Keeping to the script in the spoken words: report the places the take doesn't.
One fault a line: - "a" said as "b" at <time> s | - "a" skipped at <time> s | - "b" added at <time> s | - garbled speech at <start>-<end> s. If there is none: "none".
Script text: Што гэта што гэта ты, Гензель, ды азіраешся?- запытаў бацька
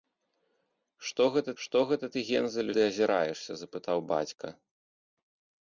none